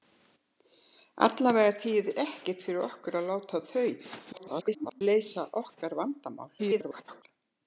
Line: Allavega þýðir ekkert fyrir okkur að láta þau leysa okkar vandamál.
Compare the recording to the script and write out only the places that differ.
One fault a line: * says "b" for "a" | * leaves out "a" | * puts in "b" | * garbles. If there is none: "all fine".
* garbles
* garbles